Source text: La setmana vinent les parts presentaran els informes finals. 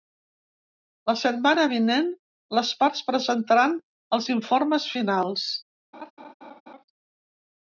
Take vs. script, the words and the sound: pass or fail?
fail